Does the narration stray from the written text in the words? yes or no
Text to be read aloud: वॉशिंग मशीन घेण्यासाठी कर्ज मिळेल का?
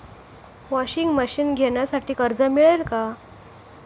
no